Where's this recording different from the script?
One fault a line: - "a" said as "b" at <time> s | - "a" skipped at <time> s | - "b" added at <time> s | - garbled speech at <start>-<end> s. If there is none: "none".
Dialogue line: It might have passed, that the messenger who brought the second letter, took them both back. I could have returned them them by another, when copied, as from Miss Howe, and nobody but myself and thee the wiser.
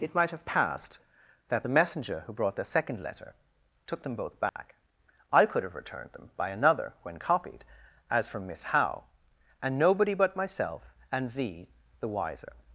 - "them" skipped at 6.3 s